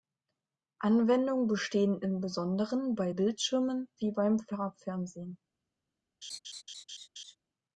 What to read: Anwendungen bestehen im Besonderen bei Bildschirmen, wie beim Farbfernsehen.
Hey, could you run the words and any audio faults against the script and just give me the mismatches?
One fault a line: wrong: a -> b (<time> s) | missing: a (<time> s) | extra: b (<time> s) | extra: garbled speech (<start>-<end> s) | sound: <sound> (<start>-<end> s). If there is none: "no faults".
sound: laugh (6.2-7.4 s)